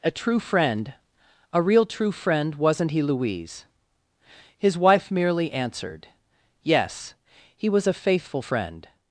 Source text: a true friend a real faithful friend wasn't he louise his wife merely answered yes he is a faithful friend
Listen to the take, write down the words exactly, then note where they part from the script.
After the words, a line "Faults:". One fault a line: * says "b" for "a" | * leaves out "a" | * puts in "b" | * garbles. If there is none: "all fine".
a true friend a real true friend wasn't he louise his wife merely answered yes he was a faithful friend
Faults:
* says "true" for "faithful"
* says "was" for "is"